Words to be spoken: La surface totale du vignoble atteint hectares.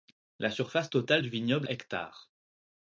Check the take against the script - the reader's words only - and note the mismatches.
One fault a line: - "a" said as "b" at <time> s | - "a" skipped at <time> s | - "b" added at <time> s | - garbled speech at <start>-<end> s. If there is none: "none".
- "atteint" skipped at 1.7 s